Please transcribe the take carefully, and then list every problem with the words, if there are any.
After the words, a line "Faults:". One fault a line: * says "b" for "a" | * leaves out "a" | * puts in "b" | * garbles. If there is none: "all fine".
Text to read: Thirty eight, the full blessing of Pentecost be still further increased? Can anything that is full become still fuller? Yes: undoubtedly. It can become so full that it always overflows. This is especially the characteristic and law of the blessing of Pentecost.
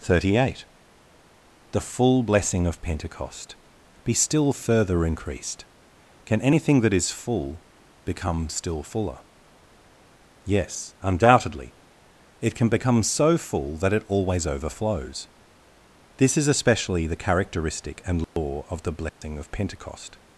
Thirty eight, the full blessing of Pentecost be still further increased? Can anything that is full become still fuller? Yes: undoubtedly. It can become so full that it always overflows. This is especially the characteristic and law of the blessing of Pentecost.
Faults:
all fine